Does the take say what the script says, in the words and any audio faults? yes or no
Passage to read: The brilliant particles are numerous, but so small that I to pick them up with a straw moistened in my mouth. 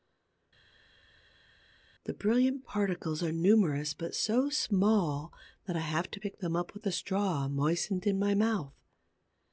no